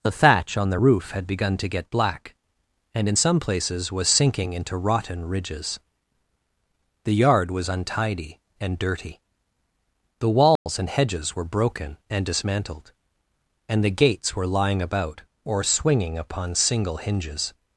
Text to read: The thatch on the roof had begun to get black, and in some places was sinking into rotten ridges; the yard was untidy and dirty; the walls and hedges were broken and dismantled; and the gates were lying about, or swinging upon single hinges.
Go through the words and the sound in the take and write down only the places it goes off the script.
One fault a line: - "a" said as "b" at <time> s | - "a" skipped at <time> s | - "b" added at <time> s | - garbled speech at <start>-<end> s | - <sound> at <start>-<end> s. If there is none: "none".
- dropout at 10.6-10.7 s